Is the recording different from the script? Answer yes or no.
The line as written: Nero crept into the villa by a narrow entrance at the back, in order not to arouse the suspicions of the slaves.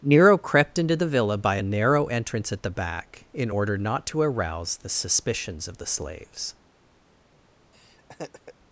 no